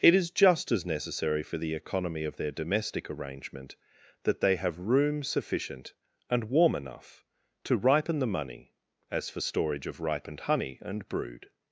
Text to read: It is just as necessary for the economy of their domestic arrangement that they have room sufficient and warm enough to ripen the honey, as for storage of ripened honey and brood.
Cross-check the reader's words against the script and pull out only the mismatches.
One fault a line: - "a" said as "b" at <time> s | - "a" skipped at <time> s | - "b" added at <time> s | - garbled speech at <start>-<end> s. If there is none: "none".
- "honey" said as "money" at 8.3 s